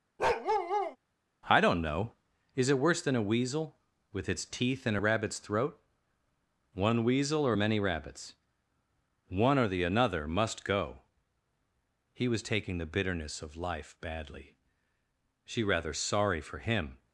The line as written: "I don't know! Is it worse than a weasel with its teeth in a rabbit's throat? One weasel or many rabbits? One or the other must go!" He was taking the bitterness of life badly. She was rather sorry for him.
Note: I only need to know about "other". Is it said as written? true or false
false